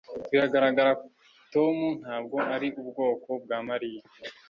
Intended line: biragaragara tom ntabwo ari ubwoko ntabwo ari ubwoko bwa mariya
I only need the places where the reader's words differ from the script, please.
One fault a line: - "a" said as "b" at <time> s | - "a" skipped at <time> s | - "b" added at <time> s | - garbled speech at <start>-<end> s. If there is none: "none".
- "ntabwo ari ubwoko" skipped at 3.3 s